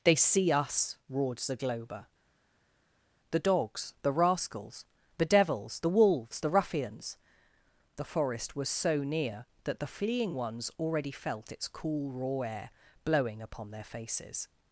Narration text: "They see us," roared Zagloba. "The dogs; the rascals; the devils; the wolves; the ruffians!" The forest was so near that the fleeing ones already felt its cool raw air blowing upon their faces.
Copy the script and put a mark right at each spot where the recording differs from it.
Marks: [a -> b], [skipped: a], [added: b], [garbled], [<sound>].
"They see us," roared Zagloba. "The dogs; the rascals; the devils; the wolves; the ruffians!" The forest was so near that the fleeing ones already felt its cool raw air blowing upon their faces.